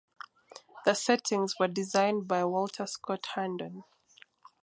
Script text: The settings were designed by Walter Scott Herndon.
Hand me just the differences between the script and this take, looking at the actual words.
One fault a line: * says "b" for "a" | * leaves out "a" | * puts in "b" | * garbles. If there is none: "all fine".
all fine